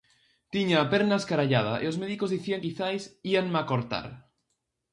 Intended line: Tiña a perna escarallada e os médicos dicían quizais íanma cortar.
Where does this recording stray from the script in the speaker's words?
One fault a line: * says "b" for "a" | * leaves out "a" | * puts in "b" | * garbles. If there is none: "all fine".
all fine